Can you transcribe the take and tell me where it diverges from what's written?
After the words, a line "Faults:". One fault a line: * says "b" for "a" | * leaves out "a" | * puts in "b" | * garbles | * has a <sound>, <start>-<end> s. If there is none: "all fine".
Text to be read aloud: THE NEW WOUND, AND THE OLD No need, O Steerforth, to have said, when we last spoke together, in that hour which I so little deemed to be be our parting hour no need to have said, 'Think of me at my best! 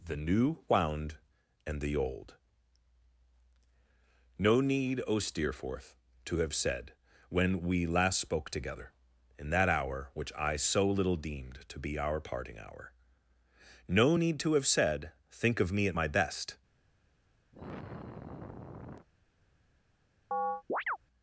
THE NEW WOUND, AND THE OLD No need, O Steerforth, to have said, when we last spoke together, in that hour which I so little deemed to be our parting hour no need to have said, 'Think of me at my best!
Faults:
* leaves out "be"
* has a sigh, 17.5-19.1 s
* has a chirp, 20.3-21.0 s